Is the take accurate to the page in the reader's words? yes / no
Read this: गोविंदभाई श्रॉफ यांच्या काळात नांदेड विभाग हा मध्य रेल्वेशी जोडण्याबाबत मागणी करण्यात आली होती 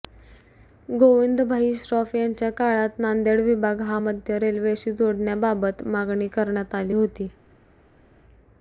yes